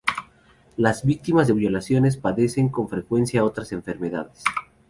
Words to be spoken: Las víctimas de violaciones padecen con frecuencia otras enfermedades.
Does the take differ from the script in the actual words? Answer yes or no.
no